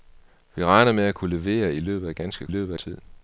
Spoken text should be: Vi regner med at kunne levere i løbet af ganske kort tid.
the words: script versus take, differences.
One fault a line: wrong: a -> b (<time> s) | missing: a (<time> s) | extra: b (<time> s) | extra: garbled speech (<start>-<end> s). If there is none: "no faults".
wrong: kort -> løbet (2.5 s)